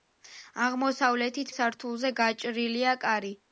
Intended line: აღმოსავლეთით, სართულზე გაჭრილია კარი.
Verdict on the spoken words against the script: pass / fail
pass